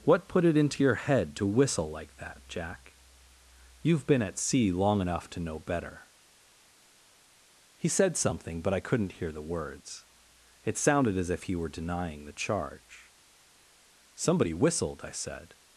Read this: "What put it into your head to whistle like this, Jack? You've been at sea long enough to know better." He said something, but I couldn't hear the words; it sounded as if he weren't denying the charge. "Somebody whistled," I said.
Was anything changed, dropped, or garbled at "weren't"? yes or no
yes